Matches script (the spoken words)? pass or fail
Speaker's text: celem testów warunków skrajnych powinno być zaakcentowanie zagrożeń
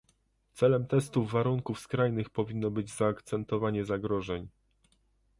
pass